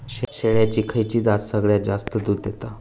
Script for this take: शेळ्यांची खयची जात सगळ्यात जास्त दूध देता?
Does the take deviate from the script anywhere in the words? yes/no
no